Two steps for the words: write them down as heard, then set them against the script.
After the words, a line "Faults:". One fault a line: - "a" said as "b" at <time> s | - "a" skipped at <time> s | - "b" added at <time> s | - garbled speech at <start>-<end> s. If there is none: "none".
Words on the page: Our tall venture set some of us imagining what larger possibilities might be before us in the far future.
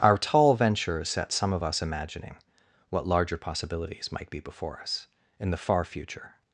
Our tall venture set some of us imagining what larger possibilities might be before us in the far future.
Faults:
none